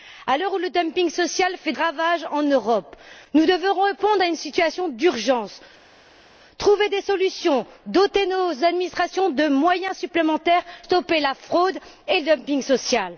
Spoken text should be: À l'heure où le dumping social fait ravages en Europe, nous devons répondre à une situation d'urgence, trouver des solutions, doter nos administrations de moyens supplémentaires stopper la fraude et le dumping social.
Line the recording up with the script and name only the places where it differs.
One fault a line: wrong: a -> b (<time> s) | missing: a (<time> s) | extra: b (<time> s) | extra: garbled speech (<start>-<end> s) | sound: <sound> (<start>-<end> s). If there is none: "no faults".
no faults